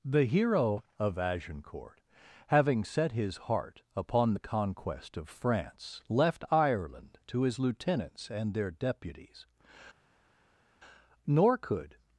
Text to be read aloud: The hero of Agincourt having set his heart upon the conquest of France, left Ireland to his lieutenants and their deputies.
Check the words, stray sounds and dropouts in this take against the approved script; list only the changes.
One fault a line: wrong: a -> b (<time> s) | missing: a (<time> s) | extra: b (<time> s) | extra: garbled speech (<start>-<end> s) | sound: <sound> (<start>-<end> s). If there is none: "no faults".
extra: Nor could (11.3 s)